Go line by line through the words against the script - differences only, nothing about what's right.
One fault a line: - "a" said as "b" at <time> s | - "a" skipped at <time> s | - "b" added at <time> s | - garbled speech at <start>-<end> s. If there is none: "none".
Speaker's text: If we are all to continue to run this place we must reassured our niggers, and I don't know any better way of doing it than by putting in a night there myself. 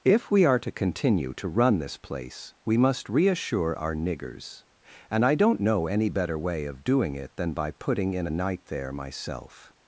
- "all" skipped at 0.6 s
- "reassured" said as "reassure" at 3.1 s